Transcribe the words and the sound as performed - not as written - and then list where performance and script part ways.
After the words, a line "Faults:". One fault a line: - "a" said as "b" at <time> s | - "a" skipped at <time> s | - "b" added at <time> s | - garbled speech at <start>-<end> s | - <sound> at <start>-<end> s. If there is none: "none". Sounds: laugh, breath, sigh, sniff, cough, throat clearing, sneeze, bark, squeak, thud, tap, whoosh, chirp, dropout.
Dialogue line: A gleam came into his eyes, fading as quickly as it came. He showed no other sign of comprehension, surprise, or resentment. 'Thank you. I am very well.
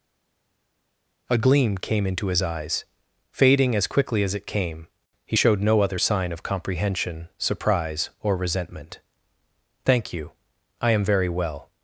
A gleam came into his eyes, fading as quickly as it came. He showed no other sign of comprehension, surprise, or resentment. 'Thank you. I am very well.
Faults:
none